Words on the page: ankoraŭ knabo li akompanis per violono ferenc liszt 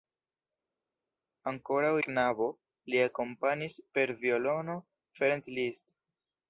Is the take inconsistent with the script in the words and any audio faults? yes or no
no